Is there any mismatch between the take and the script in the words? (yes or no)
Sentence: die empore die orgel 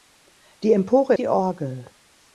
no